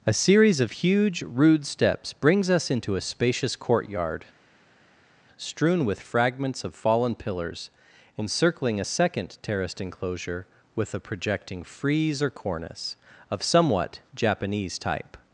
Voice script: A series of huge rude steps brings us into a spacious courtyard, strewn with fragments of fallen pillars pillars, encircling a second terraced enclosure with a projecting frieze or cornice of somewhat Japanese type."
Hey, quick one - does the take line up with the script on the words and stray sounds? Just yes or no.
no